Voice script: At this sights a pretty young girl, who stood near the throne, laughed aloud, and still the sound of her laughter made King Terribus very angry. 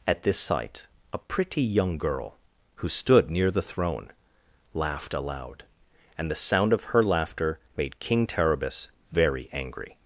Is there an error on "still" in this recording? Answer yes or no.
yes